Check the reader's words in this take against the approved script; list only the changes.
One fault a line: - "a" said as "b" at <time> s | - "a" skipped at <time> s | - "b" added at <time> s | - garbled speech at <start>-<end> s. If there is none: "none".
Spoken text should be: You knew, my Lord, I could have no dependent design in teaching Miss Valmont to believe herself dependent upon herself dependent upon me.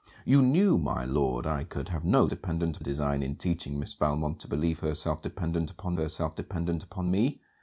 none